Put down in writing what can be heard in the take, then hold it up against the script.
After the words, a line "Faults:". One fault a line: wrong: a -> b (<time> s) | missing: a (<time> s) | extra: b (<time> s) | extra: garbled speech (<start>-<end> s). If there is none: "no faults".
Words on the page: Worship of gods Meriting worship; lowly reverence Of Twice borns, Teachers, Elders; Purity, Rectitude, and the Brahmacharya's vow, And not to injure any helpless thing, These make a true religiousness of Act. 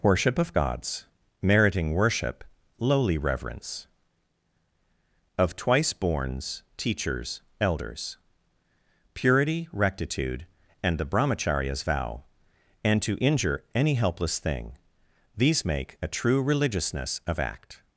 Worship of gods Meriting worship; lowly reverence Of Twice borns, Teachers, Elders; Purity, Rectitude, and the Brahmacharya's vow, And to injure any helpless thing, These make a true religiousness of Act.
Faults:
missing: not (13.0 s)